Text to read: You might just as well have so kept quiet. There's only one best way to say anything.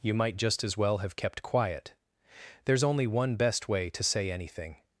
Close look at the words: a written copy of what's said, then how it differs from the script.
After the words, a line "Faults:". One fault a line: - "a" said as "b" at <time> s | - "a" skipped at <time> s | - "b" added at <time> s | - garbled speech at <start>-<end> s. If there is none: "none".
You might just as well have kept quiet. There's only one best way to say anything.
Faults:
- "so" skipped at 1.1 s